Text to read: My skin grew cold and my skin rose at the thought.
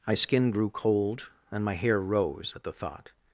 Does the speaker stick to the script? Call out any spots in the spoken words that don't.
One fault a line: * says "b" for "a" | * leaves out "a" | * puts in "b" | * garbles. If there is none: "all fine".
* says "hair" for "skin"